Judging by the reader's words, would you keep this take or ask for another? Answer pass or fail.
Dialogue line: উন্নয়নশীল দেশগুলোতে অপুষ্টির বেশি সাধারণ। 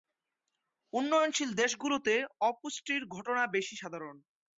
fail